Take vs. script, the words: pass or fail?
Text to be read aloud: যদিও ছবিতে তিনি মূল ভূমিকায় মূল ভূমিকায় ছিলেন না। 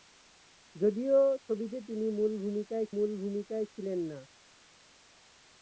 pass